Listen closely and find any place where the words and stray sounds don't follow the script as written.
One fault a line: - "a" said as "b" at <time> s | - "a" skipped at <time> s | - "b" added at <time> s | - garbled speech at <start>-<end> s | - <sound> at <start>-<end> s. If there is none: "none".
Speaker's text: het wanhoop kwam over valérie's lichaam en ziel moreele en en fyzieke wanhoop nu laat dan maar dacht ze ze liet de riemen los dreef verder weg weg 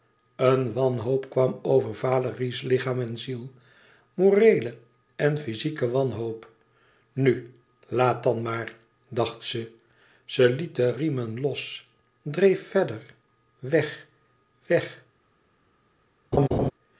- "het" said as "een" at 0.3 s
- "en" skipped at 5.4 s
- laugh at 16.3-16.7 s